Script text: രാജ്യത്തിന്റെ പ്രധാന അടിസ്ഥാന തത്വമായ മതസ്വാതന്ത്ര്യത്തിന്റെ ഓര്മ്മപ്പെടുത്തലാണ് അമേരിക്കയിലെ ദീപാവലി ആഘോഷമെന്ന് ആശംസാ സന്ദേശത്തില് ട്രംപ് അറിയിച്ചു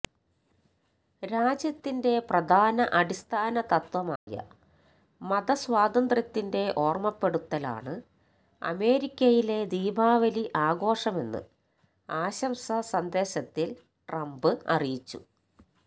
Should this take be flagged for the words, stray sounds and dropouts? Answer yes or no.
yes